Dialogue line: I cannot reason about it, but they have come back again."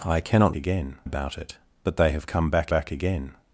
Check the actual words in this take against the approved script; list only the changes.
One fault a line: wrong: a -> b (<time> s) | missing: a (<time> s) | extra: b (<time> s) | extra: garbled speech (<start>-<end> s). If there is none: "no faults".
wrong: reason -> again (0.5 s)
extra: back (2.7 s)